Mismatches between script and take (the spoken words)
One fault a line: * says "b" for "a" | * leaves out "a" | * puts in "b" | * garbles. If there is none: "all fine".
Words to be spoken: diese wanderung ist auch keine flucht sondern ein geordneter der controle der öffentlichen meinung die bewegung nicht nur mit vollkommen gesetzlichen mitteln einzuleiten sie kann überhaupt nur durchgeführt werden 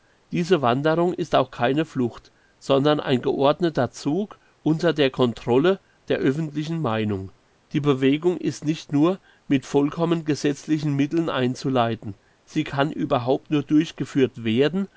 * puts in "zug unter"
* puts in "ist"